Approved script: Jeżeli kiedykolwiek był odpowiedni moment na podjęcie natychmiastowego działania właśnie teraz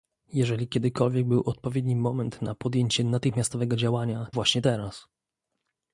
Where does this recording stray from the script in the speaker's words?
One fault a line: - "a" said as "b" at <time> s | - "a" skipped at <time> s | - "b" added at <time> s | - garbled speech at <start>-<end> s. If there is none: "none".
none